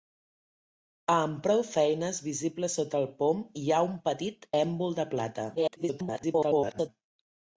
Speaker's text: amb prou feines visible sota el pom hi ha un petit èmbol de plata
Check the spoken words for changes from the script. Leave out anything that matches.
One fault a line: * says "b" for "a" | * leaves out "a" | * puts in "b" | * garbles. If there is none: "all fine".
* garbles